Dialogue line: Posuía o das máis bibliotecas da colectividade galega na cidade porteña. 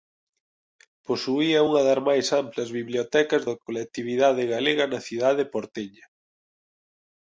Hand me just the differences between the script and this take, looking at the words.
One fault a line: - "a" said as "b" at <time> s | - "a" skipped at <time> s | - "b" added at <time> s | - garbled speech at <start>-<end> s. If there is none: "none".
- "o" said as "unha" at 1.7 s
- "amplas" added at 2.4 s